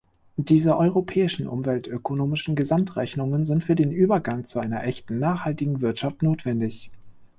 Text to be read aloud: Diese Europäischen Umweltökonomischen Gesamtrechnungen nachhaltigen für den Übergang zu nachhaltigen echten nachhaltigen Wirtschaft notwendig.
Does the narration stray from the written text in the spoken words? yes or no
yes